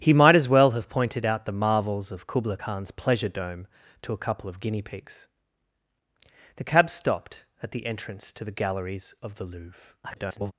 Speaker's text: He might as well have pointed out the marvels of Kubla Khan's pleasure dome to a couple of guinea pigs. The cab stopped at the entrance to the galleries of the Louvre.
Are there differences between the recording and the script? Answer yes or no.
yes